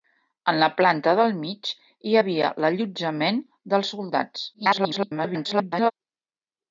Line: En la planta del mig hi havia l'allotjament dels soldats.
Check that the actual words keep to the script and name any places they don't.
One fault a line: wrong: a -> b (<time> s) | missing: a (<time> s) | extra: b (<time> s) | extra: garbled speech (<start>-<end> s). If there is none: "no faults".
extra: garbled speech (4.5-5.9 s)